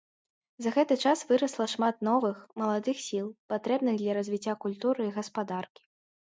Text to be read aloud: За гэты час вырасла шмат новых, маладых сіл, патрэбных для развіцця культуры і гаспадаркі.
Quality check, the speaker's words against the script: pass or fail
pass